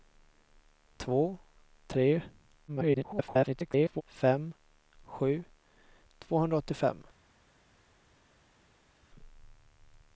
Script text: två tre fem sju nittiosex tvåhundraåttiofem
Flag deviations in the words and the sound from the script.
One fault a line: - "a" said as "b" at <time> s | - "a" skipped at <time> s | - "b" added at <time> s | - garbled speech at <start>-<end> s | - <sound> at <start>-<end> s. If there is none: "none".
- garbled speech at 2.7-4.0 s
- "nittiosex" skipped at 5.4 s